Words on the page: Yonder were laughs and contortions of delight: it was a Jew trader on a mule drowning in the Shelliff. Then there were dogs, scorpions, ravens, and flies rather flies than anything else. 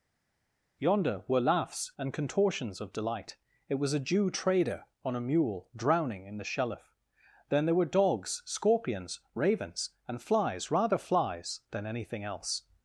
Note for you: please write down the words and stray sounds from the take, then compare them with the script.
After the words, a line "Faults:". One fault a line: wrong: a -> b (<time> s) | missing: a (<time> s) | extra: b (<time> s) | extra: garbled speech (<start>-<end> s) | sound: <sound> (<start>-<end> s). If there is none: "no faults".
Yonder were laughs and contortions of delight: it was a Jew trader on a mule drowning in the Shelliff. Then there were dogs, scorpions, ravens, and flies rather flies than anything else.
Faults:
no faults